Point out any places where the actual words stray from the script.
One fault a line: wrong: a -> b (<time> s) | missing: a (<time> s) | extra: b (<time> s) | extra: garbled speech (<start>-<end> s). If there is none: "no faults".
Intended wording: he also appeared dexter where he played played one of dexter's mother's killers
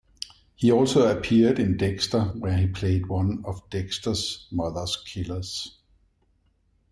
extra: in (1.6 s)
missing: played (3.1 s)